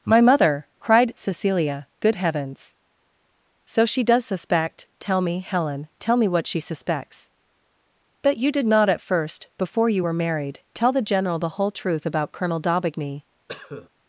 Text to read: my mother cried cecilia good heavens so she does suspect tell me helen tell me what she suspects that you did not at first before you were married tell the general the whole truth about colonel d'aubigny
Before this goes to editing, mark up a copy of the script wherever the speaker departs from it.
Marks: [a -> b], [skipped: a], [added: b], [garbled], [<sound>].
my mother cried cecilia good heavens so she does suspect tell me helen tell me what she suspects [that -> but] you did not at first before you were married tell the general the whole truth about colonel d'aubigny [cough]